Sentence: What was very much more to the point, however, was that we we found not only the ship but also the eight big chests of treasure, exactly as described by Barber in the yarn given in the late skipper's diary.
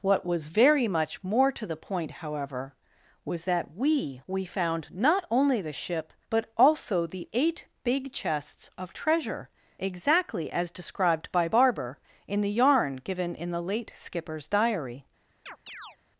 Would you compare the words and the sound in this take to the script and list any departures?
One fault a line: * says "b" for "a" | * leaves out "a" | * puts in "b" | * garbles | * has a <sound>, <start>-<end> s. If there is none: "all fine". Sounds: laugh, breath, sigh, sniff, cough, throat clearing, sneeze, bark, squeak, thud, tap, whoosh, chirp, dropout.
* has a chirp, 15.5-16.0 s